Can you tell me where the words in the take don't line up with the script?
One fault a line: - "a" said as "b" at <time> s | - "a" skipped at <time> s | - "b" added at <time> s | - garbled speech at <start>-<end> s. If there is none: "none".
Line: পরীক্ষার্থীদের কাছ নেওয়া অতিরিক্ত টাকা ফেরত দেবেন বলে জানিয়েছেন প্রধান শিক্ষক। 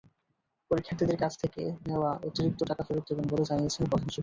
- "থেকে" added at 1.4 s